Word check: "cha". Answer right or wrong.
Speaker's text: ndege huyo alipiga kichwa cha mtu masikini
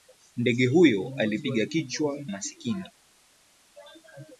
wrong